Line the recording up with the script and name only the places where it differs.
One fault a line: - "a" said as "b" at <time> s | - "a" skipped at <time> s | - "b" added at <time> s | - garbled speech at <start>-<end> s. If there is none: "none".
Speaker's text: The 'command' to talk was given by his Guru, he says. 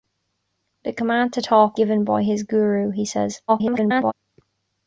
- "was" skipped at 1.8 s
- garbled speech at 3.5-4.1 s